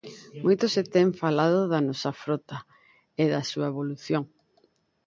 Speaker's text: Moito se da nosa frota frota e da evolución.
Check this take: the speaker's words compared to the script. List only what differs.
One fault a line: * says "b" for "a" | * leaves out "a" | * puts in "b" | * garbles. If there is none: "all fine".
* puts in "ten falado"
* leaves out "frota"
* puts in "súa"